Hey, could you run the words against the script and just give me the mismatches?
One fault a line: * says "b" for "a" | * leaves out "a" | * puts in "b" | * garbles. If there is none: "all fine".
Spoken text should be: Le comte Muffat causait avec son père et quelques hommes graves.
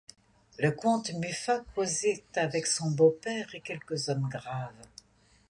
* puts in "beau"